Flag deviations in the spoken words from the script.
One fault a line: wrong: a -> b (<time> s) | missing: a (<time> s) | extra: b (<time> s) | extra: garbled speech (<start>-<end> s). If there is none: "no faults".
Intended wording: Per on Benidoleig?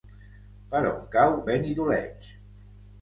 extra: cau (1.2 s)